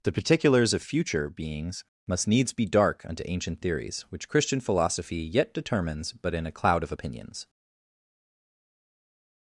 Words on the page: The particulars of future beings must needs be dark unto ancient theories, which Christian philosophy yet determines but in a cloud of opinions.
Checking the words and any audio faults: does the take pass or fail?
pass